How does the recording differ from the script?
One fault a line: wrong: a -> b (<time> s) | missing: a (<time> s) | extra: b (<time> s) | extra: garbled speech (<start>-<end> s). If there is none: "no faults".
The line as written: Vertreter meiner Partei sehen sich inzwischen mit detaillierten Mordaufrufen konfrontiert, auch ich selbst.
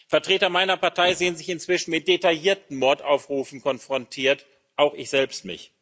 no faults